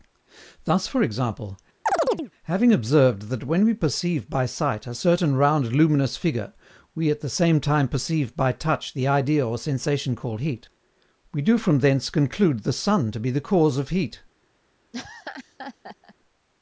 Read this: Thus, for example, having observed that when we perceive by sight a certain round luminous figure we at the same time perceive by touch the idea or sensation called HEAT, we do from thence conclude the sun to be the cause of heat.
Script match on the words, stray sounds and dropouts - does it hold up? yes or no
no